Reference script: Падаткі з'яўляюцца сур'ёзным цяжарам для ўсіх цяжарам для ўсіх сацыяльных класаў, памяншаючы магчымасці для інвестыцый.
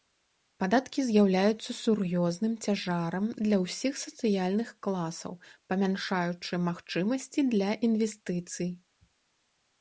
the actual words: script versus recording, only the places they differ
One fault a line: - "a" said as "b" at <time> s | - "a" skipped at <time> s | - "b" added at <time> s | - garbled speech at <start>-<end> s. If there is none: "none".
- "цяжарам для ўсіх" skipped at 3.9 s